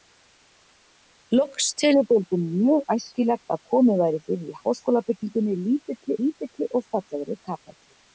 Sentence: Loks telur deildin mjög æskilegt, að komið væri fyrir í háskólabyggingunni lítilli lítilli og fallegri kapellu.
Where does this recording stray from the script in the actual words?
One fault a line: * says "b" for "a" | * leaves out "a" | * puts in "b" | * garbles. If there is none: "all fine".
all fine